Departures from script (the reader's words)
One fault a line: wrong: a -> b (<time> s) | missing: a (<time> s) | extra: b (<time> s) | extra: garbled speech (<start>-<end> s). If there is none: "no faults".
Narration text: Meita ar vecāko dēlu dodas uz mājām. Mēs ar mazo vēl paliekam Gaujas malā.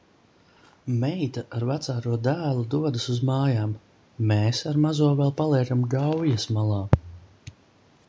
no faults